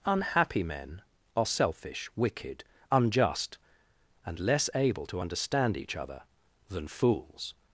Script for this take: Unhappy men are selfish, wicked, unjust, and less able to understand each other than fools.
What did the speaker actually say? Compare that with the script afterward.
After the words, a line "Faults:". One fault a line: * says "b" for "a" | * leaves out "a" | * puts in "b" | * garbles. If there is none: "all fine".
Unhappy men are selfish, wicked, unjust, and less able to understand each other than fools.
Faults:
all fine